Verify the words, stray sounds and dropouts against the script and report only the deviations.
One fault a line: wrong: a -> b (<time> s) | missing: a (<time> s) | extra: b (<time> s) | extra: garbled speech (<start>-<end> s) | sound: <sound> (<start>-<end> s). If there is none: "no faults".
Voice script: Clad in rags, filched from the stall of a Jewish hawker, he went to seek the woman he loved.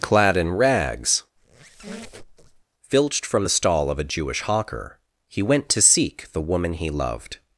sound: squeak (1.4-2.6 s)